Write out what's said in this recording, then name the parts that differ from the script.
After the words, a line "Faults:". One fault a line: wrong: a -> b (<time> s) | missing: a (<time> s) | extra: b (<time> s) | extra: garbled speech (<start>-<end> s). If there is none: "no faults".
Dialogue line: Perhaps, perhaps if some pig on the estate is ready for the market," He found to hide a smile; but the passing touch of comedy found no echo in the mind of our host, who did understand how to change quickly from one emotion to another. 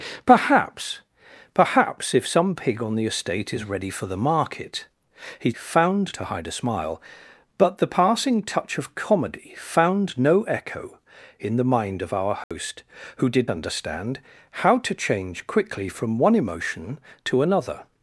Perhaps, perhaps if some pig on the estate is ready for the market," He found to hide a smile; but the passing touch of comedy found no echo in the mind of our host, who did understand how to change quickly from one emotion to another.
Faults:
no faults